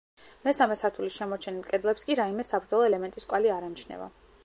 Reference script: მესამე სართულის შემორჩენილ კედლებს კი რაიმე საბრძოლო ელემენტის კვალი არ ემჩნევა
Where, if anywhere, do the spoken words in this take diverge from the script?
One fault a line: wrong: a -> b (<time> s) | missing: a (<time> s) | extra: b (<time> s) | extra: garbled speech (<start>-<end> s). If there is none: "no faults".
no faults